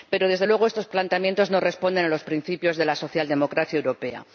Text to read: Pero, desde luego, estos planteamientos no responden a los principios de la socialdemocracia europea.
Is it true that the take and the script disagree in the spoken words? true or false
false